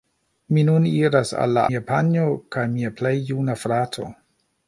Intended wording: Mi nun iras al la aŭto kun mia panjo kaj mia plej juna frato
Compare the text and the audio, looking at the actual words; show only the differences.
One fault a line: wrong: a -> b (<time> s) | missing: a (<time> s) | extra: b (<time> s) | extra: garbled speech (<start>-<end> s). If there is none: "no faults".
missing: aŭto kun (1.6 s)